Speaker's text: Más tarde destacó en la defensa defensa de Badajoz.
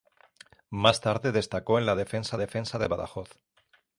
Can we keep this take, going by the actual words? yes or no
yes